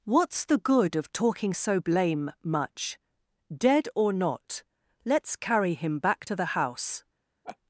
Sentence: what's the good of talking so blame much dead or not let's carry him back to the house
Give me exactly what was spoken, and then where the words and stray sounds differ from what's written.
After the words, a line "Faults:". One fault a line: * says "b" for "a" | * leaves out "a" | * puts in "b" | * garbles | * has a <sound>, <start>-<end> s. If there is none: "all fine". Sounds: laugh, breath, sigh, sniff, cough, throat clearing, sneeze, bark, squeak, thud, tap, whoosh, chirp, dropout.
what's the good of talking so blame much dead or not let's carry him back to the house
Faults:
* has a laugh, 7.4-7.6 s